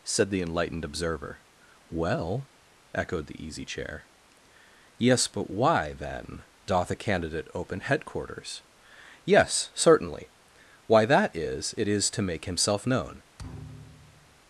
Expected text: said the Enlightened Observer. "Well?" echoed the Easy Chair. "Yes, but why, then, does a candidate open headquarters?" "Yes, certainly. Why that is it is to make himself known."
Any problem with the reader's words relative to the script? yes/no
yes